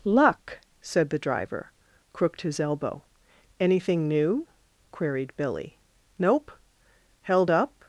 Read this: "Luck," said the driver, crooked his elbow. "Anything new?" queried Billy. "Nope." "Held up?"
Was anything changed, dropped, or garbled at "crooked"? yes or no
no